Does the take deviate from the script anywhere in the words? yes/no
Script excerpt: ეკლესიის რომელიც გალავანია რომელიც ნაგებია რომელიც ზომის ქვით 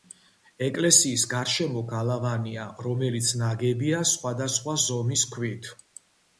yes